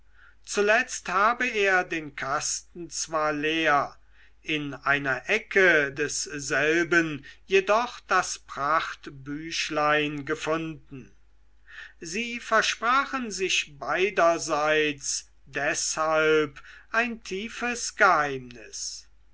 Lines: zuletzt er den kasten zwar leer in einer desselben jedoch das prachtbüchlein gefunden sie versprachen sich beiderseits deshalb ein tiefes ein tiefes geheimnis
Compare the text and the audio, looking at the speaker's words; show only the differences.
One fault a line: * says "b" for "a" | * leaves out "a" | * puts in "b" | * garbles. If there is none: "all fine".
* puts in "habe"
* puts in "ecke"
* leaves out "ein tiefes"